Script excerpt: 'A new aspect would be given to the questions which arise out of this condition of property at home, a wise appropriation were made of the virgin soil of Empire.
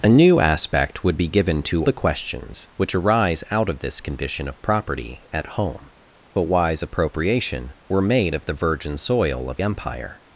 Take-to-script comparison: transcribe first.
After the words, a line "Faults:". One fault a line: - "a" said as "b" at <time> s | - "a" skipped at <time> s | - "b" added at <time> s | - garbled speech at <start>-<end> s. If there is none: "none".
'A new aspect would be given to the questions which arise out of this condition of property at home, a wise appropriation were made of the virgin soil of Empire.
Faults:
none